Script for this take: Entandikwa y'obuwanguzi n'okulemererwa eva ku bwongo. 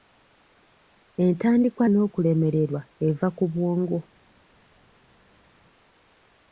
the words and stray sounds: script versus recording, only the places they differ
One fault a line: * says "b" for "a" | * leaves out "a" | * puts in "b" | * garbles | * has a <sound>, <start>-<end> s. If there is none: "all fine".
* leaves out "y'obuwanguzi"